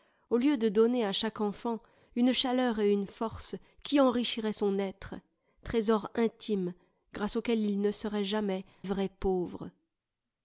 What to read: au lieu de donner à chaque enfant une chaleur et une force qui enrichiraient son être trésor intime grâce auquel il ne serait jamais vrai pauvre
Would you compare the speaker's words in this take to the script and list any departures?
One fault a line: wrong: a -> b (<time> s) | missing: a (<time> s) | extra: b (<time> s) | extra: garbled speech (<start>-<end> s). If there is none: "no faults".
no faults